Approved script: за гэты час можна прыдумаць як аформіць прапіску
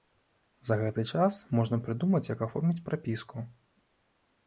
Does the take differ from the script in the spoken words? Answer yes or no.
no